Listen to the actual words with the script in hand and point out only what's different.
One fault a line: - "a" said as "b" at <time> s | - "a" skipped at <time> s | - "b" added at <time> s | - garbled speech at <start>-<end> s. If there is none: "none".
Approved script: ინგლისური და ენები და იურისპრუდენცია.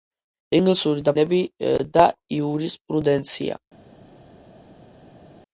none